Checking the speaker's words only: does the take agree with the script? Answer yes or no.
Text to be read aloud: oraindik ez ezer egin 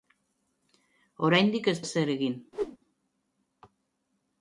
yes